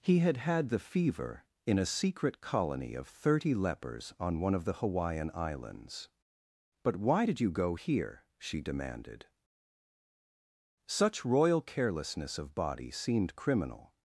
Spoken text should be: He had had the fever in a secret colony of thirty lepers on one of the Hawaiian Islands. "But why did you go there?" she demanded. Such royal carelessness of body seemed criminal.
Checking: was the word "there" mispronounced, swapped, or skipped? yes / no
yes